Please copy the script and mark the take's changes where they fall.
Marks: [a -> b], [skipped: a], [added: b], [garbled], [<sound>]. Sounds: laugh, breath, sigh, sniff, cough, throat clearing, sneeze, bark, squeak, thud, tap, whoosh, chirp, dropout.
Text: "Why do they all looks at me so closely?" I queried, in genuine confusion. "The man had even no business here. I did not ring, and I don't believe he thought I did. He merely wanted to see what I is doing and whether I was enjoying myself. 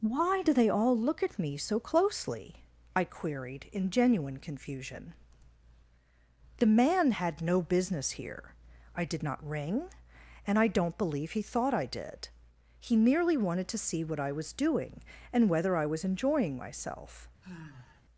"Why do they all [looks -> look] at me so closely?" I queried, in genuine confusion. "The man had [skipped: even] no business here. I did not ring, and I don't believe he thought I did. He merely wanted to see what I [is -> was] doing and whether I was enjoying myself. [sigh]